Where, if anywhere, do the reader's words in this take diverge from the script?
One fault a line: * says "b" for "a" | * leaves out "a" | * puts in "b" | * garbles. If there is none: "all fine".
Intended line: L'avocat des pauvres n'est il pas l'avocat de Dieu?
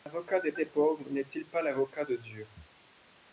* puts in "des"